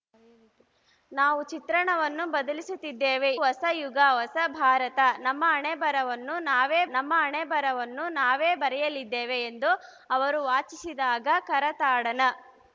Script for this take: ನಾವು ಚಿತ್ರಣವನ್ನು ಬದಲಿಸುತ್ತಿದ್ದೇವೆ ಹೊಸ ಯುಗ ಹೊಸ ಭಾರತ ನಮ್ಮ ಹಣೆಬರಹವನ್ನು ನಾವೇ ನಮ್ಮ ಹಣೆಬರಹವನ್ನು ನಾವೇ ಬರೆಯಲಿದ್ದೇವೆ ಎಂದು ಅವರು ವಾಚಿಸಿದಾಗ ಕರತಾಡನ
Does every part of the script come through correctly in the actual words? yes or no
yes